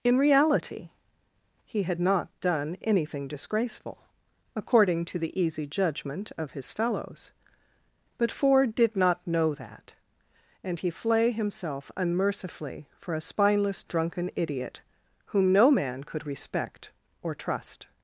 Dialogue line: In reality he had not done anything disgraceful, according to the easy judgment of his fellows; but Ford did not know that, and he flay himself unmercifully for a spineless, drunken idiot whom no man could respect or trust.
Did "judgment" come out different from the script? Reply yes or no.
no